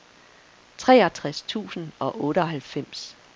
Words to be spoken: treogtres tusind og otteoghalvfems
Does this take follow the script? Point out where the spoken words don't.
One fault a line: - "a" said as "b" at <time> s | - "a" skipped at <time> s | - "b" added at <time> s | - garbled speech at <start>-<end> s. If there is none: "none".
none